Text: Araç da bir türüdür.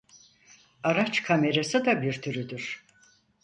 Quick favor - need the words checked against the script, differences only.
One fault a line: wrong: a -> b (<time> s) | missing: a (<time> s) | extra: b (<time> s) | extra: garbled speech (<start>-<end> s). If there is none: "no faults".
extra: kamerası (1.2 s)